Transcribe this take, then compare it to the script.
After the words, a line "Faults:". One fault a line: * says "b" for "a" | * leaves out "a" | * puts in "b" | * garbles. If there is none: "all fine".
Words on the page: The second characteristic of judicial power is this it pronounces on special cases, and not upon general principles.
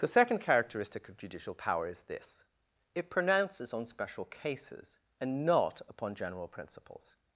The second characteristic of judicial power is this it pronounces on special cases, and not upon general principles.
Faults:
all fine